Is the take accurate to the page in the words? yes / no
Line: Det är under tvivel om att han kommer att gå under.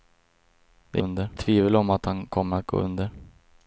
yes